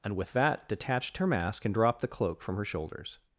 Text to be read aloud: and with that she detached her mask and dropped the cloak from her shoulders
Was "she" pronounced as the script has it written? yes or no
no